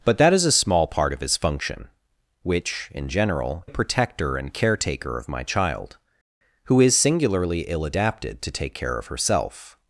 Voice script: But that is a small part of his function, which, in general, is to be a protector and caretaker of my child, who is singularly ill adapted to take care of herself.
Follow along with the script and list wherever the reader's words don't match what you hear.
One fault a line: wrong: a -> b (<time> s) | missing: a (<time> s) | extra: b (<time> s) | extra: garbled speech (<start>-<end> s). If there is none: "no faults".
missing: is to be (3.6 s)